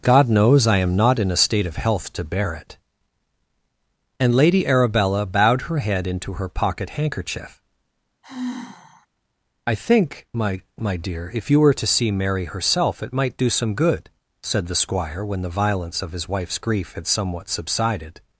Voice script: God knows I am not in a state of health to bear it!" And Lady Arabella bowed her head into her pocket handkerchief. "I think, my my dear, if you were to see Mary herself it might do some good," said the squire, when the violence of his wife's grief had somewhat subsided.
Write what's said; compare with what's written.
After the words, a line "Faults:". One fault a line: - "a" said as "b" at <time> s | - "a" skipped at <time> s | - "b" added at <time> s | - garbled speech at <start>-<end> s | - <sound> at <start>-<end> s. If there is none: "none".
God knows I am not in a state of health to bear it!" And Lady Arabella bowed her head into her pocket handkerchief. "I think, my my dear, if you were to see Mary herself it might do some good," said the squire, when the violence of his wife's grief had somewhat subsided.
Faults:
- sigh at 8.2-9.1 s